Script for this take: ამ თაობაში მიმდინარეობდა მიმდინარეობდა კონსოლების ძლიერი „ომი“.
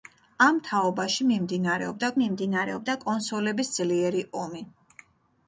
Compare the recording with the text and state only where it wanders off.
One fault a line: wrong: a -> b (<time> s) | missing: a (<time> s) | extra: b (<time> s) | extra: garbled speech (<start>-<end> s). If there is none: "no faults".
no faults